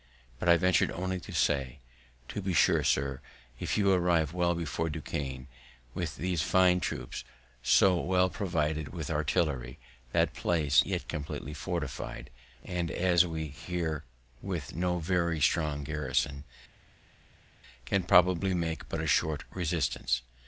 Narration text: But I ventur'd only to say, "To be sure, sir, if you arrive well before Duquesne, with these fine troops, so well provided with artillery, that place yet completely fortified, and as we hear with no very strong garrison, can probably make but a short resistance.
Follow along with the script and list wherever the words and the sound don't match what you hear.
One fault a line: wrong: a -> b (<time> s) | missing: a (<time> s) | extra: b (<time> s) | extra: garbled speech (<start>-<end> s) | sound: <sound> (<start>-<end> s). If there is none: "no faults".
no faults